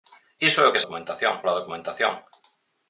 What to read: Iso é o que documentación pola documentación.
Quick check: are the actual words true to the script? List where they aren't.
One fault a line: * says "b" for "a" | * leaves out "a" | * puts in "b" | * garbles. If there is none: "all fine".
all fine